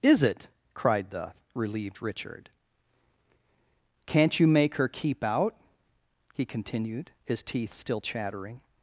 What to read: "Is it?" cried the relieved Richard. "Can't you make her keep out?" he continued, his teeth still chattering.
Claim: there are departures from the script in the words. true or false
false